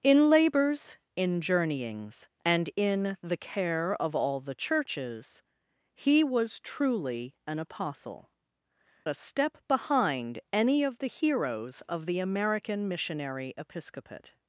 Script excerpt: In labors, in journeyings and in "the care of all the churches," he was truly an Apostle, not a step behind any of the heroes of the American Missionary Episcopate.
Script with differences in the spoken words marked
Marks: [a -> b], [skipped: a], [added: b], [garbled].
In labors, in journeyings and in "the care of all the churches," he was truly an Apostle, [skipped: not] a step behind any of the heroes of the American Missionary Episcopate.